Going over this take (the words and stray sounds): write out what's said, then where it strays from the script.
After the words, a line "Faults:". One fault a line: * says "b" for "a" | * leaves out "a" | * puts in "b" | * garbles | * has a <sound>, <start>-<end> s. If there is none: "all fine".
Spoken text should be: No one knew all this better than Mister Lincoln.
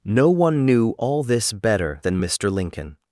No one knew all this better than Mister Lincoln.
Faults:
all fine